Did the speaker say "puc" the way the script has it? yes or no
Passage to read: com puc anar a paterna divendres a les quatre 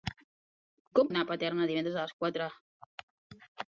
no